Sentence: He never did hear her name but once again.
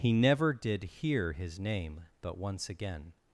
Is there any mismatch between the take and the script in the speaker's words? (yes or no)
yes